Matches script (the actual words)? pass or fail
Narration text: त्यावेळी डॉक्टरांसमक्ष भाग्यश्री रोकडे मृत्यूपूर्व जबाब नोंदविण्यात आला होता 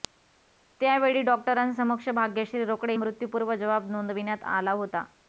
pass